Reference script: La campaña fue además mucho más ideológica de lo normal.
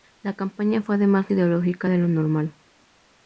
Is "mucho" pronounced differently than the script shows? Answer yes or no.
yes